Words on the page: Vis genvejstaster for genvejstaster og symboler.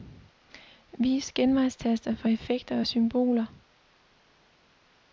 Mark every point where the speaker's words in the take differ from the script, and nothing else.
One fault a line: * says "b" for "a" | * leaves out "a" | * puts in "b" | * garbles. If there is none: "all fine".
* says "effekter" for "genvejstaster"